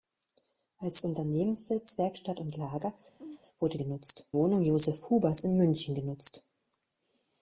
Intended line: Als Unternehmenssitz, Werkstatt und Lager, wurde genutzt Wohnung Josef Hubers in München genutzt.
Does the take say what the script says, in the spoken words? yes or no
yes